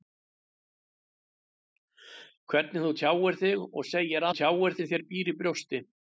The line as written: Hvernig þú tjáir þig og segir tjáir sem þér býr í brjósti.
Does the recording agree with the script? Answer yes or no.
yes